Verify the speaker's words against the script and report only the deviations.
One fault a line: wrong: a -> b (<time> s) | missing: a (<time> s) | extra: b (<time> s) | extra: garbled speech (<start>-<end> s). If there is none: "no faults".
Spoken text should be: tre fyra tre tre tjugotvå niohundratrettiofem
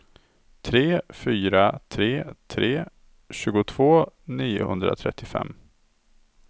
no faults